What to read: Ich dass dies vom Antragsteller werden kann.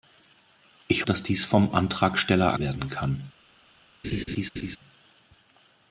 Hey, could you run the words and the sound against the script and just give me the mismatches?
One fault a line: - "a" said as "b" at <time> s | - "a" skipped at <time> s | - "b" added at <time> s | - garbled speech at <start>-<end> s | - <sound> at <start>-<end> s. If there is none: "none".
- laugh at 4.0-4.8 s